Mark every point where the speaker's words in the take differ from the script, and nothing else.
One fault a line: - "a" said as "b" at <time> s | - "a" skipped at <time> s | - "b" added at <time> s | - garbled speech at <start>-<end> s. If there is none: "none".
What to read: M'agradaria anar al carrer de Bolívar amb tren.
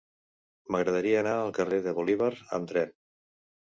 none